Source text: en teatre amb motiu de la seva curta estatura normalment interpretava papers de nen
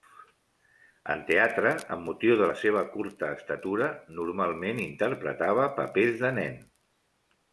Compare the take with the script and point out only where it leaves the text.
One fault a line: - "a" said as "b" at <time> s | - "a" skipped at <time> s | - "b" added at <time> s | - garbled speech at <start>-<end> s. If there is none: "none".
none